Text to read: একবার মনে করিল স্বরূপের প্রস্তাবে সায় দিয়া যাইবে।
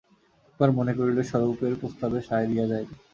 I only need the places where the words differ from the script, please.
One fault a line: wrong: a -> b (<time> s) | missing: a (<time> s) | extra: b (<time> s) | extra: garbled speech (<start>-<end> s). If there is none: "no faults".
no faults